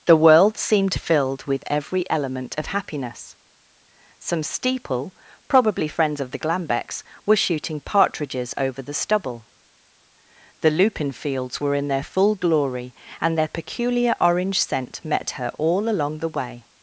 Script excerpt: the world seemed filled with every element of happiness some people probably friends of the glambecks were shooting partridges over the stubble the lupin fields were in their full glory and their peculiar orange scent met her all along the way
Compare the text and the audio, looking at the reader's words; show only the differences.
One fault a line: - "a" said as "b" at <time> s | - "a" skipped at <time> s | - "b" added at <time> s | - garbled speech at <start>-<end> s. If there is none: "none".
- "people" said as "steeple" at 4.4 s